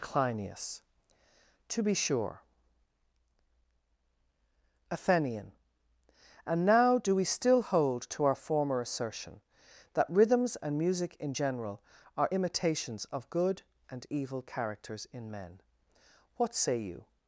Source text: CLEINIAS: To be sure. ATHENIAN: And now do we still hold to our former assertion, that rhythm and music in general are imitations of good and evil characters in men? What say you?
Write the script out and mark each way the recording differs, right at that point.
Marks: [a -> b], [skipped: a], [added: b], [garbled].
CLEINIAS: To be sure. ATHENIAN: And now do we still hold to our former assertion, that [rhythm -> rhythms] and music in general are imitations of good and evil characters in men? What say you?